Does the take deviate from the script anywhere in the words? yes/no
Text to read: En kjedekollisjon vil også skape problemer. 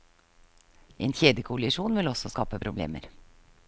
no